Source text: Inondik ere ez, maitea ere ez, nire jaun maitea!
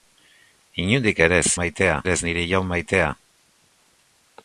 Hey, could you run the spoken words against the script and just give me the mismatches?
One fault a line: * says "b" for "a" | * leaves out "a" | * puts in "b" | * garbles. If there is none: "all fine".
all fine